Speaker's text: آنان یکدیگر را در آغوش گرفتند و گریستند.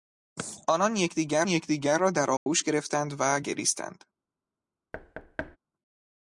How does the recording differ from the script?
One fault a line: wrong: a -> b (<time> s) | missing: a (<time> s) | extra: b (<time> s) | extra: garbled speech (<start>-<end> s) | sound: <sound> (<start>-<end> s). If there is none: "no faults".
extra: یکدیگر (1.5 s)
sound: dropout (2.4-2.5 s)
sound: thud (4.9-5.6 s)